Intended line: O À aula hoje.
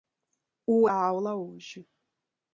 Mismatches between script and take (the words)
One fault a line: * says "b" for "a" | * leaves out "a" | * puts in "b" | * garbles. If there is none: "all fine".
all fine